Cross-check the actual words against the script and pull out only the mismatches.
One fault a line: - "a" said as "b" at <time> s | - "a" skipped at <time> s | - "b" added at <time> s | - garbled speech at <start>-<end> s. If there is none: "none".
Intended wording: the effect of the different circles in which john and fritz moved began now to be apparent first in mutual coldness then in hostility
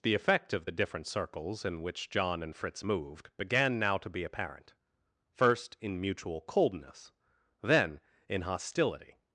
none